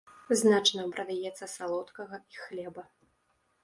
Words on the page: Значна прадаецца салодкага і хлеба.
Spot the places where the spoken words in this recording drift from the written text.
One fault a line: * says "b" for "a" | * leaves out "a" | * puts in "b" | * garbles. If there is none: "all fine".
all fine